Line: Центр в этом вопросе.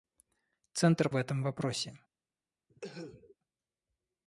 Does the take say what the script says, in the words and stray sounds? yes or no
no